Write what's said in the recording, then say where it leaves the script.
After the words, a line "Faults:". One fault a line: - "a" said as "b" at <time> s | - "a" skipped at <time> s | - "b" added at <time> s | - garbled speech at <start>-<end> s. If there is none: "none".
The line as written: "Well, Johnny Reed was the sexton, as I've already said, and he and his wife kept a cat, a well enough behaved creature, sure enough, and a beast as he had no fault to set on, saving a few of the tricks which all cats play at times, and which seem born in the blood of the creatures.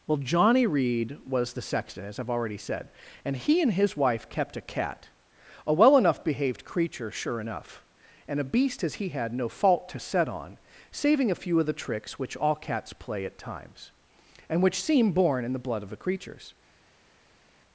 "Well, Johnny Reed was the sexton, as I've already said, and he and his wife kept a cat, a well enough behaved creature, sure enough, and a beast as he had no fault to set on, saving a few of the tricks which all cats play at times, and which seem born in the blood of the creatures.
Faults:
none